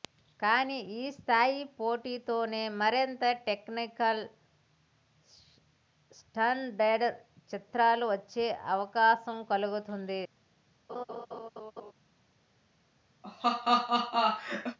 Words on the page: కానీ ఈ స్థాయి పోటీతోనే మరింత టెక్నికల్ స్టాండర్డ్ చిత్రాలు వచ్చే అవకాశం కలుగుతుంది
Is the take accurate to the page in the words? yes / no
yes